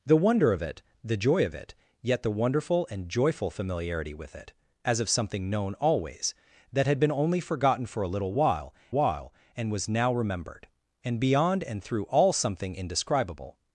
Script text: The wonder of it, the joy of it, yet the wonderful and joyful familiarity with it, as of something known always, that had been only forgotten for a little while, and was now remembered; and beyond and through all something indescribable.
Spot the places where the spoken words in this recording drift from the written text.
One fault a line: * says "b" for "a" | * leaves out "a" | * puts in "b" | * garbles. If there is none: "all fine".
* puts in "while"